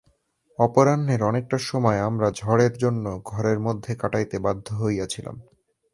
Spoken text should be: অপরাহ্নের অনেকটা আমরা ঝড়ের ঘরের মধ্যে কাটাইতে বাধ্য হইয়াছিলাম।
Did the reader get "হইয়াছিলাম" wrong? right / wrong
right